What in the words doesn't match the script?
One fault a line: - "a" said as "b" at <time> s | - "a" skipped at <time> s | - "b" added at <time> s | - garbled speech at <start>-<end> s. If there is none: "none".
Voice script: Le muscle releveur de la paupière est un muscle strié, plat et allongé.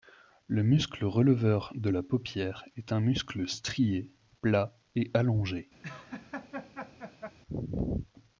none